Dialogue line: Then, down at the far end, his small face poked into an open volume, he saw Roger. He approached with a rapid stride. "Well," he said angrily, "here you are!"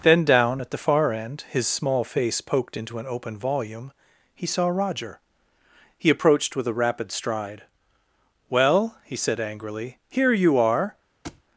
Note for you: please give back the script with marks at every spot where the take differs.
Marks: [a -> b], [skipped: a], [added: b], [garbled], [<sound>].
Then, down at the far end, his small face poked into an open volume, he saw Roger. He approached with a rapid stride. "Well," he said angrily, "here you are!" [thud]